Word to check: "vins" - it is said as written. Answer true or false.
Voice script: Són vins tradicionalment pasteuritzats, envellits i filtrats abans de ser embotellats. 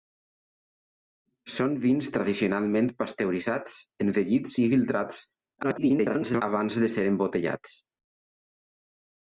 true